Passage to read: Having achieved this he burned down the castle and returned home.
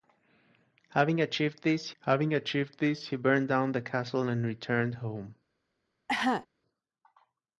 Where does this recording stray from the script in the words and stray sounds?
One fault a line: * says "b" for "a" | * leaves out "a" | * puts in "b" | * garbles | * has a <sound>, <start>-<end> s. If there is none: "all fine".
* puts in "having achieved this"
* has a cough, 6.1-6.5 s